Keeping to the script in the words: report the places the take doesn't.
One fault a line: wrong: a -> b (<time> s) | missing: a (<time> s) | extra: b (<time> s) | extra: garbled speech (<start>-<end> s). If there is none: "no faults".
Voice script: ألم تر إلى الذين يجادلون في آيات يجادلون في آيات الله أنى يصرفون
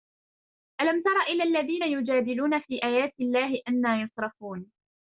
missing: يجادلون في آيات (3.1 s)